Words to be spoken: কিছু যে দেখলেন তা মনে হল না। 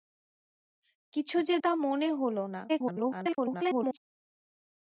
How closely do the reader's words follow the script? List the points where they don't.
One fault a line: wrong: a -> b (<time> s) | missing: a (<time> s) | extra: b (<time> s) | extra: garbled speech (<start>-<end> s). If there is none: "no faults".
missing: দেখলেন (1.6 s)
extra: garbled speech (2.7-4.0 s)